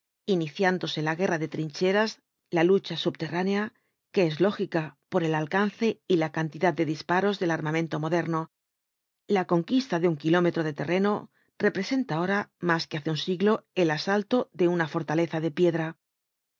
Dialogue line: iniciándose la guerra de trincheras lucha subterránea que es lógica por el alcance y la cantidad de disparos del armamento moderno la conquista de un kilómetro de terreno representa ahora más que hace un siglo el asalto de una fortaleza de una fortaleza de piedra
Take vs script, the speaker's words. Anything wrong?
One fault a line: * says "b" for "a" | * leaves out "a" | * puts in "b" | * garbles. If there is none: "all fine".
* puts in "la"
* leaves out "una fortaleza de"